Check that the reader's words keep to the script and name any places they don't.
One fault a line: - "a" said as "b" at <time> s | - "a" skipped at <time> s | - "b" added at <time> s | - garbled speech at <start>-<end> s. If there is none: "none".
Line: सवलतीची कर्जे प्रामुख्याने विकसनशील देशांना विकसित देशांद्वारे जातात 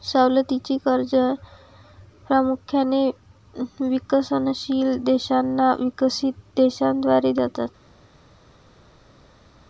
none